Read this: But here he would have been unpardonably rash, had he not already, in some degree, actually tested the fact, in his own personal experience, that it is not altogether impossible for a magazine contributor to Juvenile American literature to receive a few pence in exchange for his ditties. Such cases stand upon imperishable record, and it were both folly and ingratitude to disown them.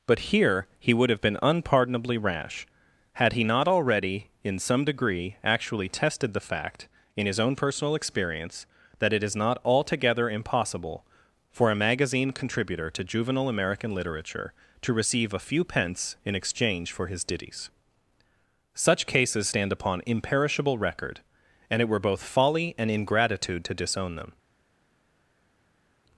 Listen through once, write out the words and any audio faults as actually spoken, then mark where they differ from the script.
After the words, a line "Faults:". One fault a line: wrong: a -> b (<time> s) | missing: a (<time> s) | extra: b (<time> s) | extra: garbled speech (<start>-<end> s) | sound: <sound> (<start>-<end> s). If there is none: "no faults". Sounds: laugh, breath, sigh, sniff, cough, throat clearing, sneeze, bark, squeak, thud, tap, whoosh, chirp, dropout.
But here he would have been unpardonably rash, had he not already, in some degree, actually tested the fact, in his own personal experience, that it is not altogether impossible for a magazine contributor to Juvenile American literature to receive a few pence in exchange for his ditties. Such cases stand upon imperishable record, and it were both folly and ingratitude to disown them.
Faults:
no faults